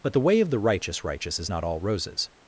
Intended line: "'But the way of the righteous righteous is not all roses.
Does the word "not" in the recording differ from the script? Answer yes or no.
no